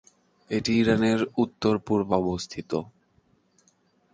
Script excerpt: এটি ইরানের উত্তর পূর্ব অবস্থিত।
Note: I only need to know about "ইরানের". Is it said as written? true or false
true